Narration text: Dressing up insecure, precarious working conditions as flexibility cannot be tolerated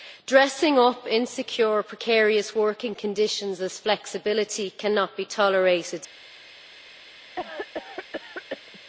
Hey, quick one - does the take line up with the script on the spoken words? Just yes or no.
yes